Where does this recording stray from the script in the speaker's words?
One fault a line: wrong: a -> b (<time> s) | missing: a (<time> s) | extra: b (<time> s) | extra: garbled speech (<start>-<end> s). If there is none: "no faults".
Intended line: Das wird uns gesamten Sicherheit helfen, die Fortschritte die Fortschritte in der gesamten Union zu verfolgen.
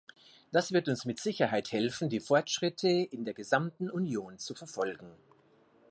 wrong: gesamten -> mit (1.1 s)
missing: die Fortschritte (2.9 s)